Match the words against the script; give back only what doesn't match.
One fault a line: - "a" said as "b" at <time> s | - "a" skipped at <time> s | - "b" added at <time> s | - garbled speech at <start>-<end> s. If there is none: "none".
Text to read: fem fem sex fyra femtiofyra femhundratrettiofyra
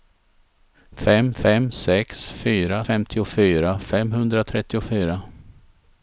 none